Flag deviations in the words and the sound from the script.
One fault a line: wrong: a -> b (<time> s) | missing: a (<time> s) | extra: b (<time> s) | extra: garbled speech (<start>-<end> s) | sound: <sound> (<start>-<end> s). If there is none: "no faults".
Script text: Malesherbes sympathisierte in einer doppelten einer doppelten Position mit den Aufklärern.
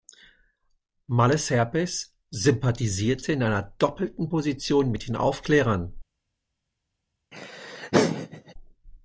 missing: einer doppelten (4.3 s)
sound: laugh (7.3-8.5 s)